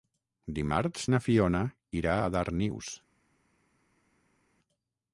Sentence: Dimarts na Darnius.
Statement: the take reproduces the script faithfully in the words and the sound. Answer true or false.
false